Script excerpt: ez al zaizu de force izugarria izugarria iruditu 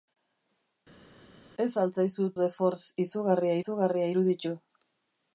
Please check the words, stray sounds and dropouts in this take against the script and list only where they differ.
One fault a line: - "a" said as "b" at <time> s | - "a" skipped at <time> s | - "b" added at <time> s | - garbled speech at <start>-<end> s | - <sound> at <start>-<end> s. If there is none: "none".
none